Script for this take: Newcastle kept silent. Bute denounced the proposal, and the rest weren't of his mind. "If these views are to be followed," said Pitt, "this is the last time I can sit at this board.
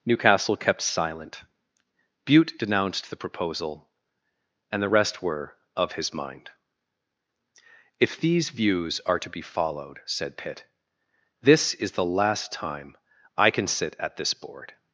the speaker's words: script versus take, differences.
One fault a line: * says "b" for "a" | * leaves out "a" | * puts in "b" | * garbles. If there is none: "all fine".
* says "were" for "weren't"